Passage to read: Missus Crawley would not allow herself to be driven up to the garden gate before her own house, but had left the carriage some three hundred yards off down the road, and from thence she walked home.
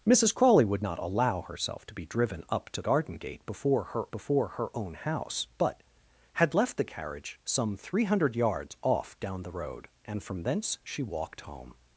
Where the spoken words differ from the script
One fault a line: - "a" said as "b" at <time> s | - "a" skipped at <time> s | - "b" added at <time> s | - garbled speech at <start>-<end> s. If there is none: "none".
- "the" skipped at 2.8 s
- "before her" added at 4.1 s